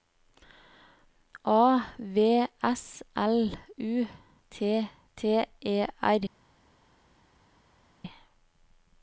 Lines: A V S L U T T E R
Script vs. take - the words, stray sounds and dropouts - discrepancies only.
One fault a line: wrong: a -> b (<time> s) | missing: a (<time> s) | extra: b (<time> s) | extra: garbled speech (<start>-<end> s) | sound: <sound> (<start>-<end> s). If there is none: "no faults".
no faults